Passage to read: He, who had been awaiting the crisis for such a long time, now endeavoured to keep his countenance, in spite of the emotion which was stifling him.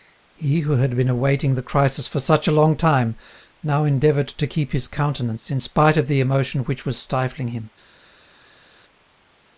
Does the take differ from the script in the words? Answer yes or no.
no